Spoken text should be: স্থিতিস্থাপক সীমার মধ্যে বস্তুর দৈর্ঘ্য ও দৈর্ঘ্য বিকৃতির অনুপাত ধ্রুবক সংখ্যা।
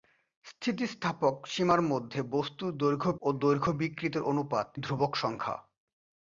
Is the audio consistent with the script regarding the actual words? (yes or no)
yes